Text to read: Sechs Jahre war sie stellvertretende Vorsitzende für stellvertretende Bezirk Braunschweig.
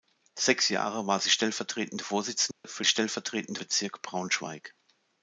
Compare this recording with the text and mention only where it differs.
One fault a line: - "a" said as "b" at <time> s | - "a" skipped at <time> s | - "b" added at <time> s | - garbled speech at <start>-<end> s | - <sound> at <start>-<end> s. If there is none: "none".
- dropout at 2.5-2.6 s